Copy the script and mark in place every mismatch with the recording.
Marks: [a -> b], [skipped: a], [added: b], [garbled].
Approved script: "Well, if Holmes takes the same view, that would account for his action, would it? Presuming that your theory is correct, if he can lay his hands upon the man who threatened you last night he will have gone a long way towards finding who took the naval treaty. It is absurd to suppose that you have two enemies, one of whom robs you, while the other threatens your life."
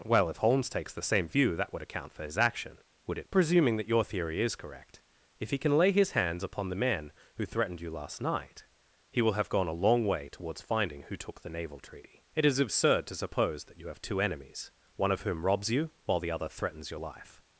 "Well, if Holmes takes the same view, that would account for his action, would it? Presuming that your theory is correct, if he can lay his hands upon the man who threatened you last night he will have gone a long way towards finding who took the naval treaty. It is absurd to suppose that you have two enemies, one of whom robs you, while the other threatens your life."